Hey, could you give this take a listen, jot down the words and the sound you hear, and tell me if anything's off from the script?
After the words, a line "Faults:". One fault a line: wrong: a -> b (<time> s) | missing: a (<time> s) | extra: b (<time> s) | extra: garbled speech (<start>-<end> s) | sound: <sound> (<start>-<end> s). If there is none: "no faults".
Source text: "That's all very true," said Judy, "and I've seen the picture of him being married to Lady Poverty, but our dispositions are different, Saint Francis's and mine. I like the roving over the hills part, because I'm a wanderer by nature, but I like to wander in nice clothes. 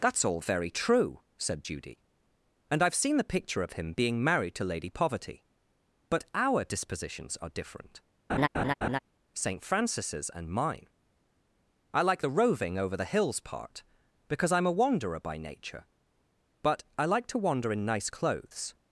"That's all very true," said Judy, "and I've seen the picture of him being married to Lady Poverty, but our dispositions are different, Saint Francis's and mine. I like the roving over the hills part, because I'm a wanderer by nature, but I like to wander in nice clothes.
Faults:
sound: laugh (8.3-9.0 s)